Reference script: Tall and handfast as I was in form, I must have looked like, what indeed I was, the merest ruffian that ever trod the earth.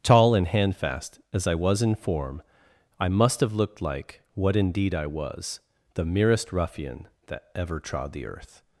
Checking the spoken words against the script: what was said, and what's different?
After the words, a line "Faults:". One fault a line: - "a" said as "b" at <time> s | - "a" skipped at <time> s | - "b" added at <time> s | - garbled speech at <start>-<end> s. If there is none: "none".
Tall and handfast as I was in form, I must have looked like, what indeed I was, the merest ruffian that ever trod the earth.
Faults:
none